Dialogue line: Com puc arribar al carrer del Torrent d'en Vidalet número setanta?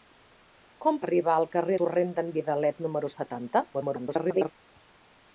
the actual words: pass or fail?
fail